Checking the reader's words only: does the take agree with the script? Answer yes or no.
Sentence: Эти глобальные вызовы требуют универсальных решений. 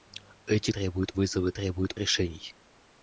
no